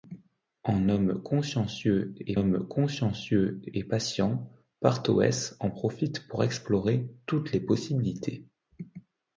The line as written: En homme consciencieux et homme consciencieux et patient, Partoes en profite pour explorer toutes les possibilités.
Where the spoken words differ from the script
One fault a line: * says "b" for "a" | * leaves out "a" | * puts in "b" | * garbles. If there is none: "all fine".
all fine